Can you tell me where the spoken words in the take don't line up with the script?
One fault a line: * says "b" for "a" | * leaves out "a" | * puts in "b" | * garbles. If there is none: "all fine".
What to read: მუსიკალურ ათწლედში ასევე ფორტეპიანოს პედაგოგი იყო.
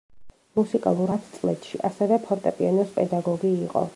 all fine